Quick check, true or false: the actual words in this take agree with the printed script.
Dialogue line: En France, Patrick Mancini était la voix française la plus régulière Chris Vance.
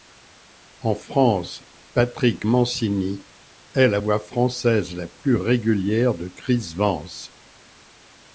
false